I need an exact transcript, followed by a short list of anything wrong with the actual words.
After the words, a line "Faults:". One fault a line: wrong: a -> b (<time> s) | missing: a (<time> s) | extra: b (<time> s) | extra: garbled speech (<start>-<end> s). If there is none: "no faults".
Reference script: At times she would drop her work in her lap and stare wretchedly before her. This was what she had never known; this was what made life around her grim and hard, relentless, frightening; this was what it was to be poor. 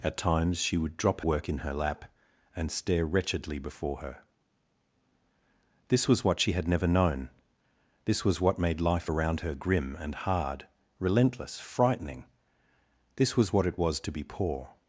At times she would drop work in her lap and stare wretchedly before her. This was what she had never known; this was what made life around her grim and hard, relentless, frightening; this was what it was to be poor.
Faults:
missing: her (1.2 s)